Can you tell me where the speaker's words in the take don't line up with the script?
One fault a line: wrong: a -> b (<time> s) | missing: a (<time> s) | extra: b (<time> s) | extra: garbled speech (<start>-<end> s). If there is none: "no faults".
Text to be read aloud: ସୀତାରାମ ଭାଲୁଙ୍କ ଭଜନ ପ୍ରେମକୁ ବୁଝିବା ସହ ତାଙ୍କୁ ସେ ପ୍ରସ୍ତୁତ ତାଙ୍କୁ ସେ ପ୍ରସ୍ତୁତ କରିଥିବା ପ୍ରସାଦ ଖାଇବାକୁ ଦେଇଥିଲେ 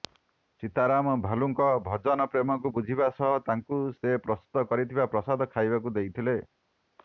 missing: ତାଙ୍କୁ ସେ ପ୍ରସ୍ତୁତ (4.7 s)